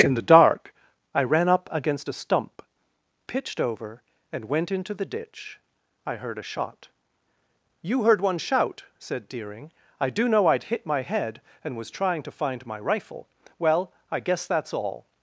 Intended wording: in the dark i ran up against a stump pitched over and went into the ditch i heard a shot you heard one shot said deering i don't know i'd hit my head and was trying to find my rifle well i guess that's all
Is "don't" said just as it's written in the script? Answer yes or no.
no